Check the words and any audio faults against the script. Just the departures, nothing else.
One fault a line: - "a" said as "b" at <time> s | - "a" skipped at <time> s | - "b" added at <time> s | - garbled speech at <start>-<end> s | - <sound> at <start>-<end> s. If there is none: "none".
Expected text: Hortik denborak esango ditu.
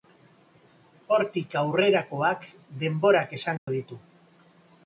- "aurrerakoak" added at 1.6 s
- dropout at 3.6-3.7 s